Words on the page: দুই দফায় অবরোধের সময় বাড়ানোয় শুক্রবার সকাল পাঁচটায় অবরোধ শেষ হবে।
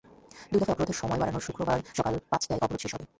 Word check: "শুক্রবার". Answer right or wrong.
right